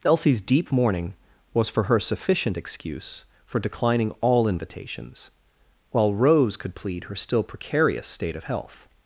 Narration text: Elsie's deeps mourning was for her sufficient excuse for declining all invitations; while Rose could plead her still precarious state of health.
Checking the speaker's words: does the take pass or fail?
fail